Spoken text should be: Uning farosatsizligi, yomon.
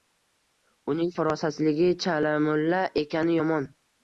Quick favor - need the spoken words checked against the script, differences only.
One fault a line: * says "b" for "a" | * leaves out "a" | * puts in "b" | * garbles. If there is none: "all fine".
* puts in "chalamulla ekani"